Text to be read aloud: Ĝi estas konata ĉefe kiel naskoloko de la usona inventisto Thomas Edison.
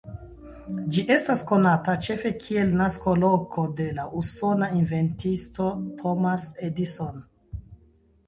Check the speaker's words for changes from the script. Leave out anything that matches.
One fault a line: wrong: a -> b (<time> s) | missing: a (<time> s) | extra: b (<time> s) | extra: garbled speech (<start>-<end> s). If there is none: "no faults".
no faults